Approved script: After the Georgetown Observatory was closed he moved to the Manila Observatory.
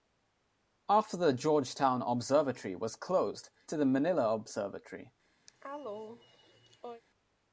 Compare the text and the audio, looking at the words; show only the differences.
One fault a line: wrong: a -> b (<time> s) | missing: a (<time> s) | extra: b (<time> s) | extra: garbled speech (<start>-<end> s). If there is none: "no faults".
missing: he moved (3.5 s)